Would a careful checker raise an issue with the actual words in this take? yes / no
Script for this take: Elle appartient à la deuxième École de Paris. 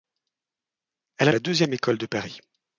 yes